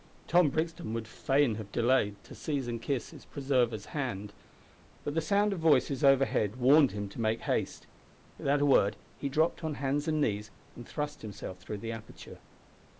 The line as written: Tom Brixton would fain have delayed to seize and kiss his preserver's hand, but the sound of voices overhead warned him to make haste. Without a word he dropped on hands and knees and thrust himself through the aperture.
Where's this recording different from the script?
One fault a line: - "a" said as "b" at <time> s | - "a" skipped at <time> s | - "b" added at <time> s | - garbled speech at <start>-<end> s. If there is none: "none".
none